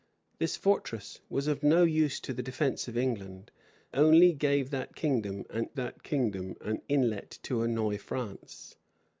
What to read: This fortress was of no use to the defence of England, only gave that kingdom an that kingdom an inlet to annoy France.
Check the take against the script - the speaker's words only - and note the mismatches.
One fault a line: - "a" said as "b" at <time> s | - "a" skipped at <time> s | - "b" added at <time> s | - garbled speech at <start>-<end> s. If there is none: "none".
none